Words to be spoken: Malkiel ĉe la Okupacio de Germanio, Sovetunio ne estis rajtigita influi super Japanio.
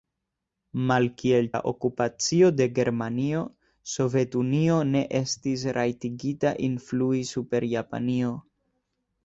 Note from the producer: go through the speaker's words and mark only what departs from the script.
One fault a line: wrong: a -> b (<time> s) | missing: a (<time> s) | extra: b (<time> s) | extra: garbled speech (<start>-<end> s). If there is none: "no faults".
missing: ĉe (1.5 s)